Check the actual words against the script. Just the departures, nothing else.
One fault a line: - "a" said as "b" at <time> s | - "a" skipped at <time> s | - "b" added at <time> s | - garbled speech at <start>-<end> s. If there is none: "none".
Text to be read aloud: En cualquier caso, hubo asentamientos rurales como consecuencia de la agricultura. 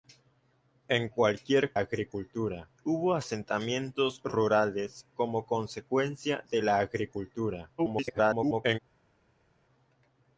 - "caso" said as "agricultura" at 1.8 s
- garbled speech at 7.8-8.8 s